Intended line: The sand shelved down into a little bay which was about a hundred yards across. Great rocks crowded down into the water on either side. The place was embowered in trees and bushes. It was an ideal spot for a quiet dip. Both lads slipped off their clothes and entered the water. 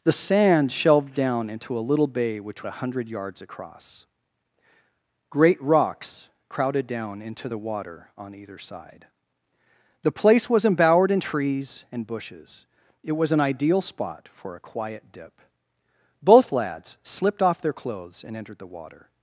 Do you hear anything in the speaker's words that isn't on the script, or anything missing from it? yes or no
yes